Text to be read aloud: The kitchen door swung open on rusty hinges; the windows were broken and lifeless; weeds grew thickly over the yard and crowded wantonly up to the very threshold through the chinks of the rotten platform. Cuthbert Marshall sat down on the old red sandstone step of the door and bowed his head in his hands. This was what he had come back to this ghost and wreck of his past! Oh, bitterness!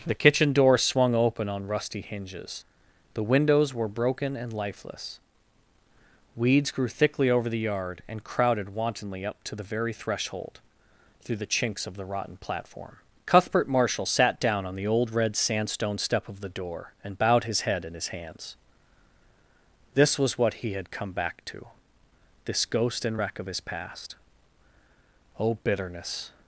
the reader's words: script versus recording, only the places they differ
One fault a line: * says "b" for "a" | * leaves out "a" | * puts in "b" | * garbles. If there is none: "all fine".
all fine